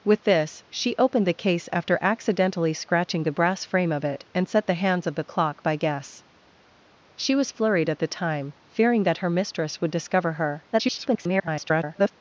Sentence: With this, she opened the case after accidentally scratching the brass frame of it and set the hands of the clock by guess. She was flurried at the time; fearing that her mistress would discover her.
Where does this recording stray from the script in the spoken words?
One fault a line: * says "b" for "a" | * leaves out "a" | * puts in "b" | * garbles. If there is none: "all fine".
* garbles